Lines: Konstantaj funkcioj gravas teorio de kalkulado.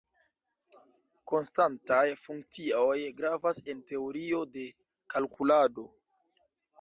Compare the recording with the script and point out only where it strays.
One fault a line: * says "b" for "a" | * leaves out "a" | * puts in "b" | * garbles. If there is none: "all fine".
* puts in "en"